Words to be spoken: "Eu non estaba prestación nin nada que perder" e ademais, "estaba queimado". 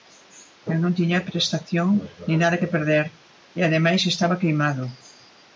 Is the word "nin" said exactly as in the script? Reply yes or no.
yes